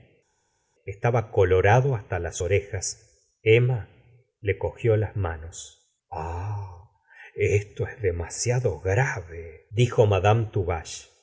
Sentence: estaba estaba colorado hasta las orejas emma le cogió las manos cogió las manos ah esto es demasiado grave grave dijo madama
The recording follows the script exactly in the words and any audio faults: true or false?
false